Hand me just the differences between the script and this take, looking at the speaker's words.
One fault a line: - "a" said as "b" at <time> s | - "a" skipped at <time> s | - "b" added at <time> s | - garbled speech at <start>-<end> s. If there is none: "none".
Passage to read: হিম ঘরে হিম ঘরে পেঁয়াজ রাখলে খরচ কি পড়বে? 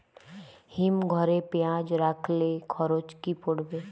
- "হিম ঘরে" skipped at 1.4 s